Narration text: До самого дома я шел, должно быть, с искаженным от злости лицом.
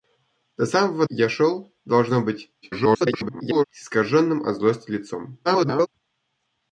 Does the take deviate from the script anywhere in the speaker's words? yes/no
yes